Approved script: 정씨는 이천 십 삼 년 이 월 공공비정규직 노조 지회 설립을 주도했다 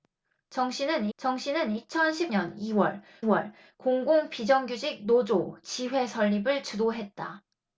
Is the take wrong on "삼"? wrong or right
wrong